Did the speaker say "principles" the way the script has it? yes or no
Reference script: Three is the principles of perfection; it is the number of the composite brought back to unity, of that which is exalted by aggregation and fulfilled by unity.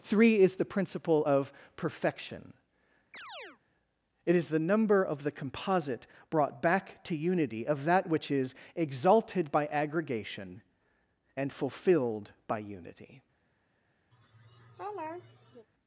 no